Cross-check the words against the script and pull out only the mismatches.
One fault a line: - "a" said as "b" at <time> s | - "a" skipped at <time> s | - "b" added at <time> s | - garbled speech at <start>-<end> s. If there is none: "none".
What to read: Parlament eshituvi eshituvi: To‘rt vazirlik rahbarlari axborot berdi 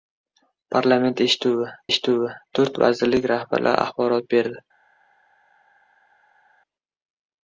none